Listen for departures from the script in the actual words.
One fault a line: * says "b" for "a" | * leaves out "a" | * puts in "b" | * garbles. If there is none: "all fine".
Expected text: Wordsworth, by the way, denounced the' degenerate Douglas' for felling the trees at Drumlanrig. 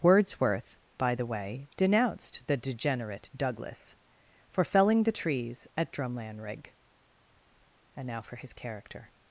* puts in "And now for his character"